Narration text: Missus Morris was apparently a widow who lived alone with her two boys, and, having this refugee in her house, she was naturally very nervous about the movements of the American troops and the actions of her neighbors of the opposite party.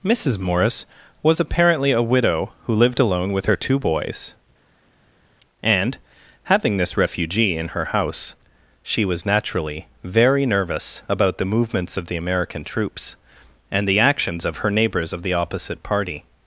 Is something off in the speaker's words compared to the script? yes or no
no